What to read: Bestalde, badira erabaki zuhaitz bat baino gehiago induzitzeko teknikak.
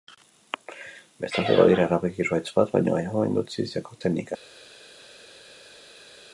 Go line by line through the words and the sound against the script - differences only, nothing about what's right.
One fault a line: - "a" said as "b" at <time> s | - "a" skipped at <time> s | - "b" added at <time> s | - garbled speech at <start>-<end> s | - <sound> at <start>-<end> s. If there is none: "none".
none